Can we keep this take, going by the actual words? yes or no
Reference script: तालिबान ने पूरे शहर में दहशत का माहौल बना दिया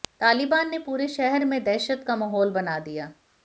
yes